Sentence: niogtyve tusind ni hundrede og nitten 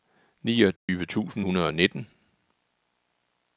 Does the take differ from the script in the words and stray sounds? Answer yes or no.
yes